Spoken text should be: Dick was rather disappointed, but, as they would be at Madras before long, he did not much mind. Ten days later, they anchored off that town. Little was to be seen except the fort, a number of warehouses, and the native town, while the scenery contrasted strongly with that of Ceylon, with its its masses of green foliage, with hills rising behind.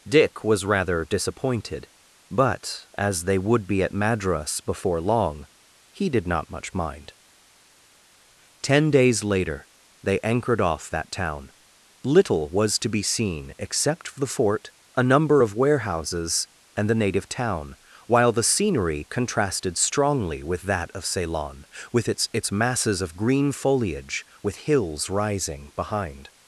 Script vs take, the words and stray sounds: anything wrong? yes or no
no